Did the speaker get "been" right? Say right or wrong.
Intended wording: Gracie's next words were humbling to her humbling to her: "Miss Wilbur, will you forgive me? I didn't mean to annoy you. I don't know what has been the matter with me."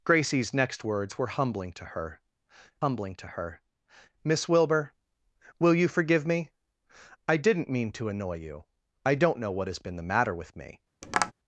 right